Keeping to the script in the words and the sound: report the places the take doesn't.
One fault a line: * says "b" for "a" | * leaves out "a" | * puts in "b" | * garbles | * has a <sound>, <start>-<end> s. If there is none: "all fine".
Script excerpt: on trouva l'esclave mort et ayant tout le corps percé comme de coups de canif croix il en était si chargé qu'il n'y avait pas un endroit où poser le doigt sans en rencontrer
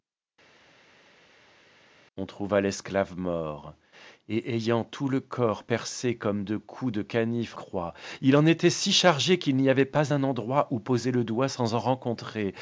all fine